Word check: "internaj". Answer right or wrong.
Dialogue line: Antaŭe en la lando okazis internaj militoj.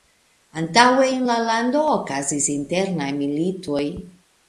right